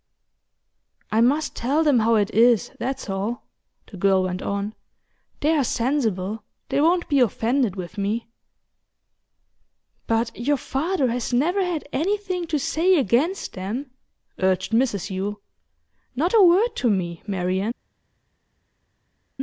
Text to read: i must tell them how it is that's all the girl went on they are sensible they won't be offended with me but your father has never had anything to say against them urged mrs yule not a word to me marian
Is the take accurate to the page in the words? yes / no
yes